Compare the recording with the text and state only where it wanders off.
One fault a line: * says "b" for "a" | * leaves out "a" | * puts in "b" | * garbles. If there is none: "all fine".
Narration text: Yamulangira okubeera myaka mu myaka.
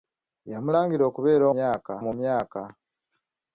all fine